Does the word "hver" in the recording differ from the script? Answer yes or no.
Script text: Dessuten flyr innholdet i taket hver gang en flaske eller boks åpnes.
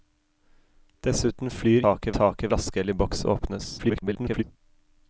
yes